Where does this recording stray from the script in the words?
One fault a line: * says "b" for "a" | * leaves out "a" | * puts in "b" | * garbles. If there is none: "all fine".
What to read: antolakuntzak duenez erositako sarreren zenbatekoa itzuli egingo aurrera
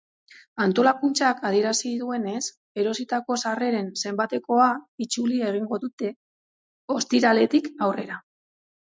* puts in "adierazi"
* puts in "dute ostiraletik"